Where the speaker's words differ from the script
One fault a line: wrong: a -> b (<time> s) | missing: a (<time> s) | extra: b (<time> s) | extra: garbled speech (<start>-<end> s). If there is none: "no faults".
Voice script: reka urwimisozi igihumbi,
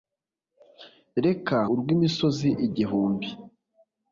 no faults